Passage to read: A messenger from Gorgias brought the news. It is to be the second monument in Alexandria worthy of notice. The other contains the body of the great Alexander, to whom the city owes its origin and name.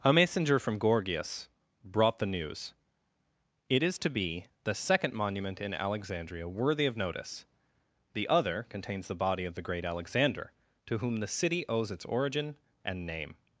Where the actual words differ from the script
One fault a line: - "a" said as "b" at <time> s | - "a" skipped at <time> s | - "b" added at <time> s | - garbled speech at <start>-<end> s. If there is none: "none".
none